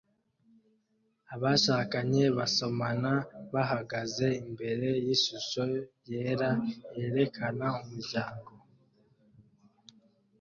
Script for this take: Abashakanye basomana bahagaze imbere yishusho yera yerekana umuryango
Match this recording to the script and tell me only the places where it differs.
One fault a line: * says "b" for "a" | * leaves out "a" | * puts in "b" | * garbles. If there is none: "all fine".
all fine